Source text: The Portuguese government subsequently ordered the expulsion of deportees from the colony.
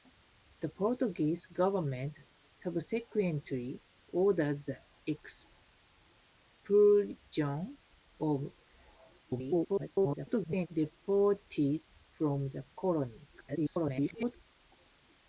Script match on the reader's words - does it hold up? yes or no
no